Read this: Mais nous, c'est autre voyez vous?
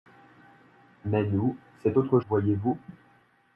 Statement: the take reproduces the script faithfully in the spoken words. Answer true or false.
true